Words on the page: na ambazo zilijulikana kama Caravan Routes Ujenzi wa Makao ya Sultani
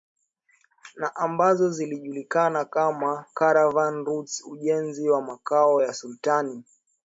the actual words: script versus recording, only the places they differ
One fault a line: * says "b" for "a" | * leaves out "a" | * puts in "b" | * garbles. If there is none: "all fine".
all fine